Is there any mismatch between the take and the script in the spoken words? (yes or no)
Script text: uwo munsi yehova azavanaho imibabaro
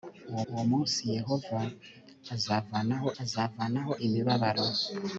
yes